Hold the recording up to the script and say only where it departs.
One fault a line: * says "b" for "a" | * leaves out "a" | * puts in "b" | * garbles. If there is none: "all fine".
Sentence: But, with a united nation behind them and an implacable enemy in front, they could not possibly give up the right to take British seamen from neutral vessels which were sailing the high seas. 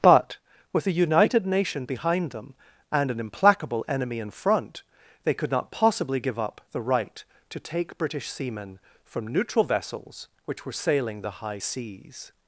all fine